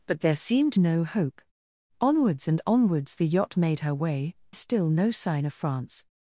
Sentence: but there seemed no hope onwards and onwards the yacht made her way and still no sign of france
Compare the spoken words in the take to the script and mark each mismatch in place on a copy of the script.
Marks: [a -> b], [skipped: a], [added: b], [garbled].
but there seemed no hope onwards and onwards the yacht made her way [skipped: and] still no sign of france